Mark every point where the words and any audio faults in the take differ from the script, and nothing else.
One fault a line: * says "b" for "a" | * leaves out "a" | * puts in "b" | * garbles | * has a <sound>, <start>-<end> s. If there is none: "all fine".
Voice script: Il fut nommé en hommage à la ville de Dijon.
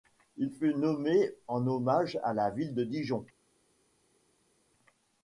all fine